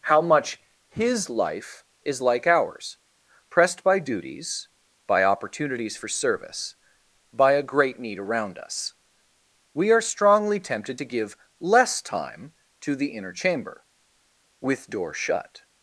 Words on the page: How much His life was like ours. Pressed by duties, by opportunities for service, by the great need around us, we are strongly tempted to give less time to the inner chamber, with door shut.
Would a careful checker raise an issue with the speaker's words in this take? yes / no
yes